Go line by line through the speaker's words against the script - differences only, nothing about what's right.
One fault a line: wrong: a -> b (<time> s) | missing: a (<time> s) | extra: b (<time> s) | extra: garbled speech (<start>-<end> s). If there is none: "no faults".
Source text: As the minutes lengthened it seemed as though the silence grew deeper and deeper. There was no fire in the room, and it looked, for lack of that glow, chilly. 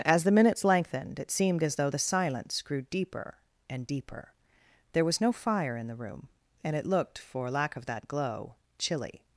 no faults